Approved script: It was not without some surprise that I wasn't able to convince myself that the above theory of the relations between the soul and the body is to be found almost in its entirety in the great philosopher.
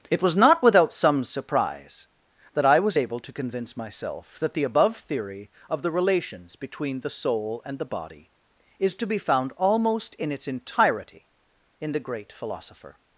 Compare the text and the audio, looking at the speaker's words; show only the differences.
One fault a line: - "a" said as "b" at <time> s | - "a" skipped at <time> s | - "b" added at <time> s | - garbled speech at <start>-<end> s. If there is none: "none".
- "wasn't" said as "was" at 2.8 s